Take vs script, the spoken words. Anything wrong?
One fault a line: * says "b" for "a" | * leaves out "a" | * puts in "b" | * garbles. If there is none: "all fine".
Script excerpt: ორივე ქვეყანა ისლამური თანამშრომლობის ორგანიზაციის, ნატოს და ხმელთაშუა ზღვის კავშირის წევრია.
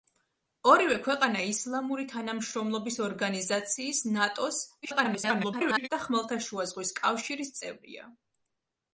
* garbles